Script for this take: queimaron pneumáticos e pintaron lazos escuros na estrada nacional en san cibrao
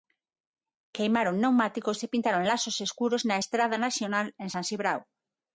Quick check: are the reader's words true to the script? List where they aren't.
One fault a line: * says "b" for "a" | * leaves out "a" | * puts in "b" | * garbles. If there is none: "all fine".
all fine